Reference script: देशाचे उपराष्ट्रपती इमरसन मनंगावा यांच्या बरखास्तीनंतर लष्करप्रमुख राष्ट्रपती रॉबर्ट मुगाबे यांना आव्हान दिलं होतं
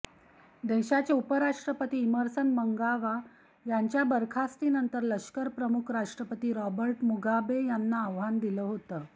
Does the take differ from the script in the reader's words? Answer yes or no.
no